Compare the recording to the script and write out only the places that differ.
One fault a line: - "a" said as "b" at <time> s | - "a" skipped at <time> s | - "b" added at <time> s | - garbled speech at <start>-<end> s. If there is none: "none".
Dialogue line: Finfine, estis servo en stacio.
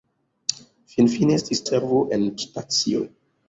none